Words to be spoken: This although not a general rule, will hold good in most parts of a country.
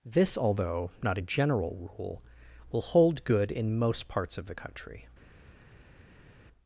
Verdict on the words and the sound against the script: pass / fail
fail